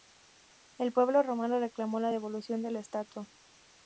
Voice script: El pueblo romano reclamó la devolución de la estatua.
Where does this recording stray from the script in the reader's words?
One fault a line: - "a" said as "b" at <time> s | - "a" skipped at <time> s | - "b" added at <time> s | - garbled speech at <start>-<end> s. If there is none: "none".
none